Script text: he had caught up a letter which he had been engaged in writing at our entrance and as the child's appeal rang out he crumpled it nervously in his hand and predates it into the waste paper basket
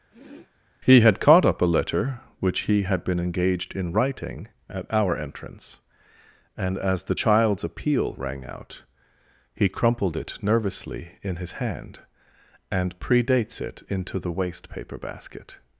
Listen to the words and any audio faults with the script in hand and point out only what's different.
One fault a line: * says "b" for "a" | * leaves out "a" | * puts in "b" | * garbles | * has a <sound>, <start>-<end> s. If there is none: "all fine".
* has a sniff, 0.1-0.5 s